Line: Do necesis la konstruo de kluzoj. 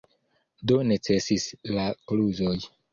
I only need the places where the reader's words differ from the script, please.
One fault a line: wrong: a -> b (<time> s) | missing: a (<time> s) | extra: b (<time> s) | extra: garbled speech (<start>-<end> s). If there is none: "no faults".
missing: konstruo de (1.9 s)